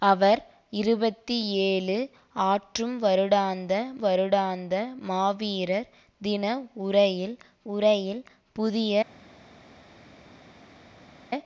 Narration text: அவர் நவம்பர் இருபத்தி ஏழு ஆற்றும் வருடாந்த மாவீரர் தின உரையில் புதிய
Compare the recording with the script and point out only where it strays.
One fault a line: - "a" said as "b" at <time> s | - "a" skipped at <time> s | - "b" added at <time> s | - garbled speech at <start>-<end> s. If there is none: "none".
- "நவம்பர்" skipped at 0.4 s
- "வருடாந்த" added at 4.0 s
- "உரையில்" added at 7.7 s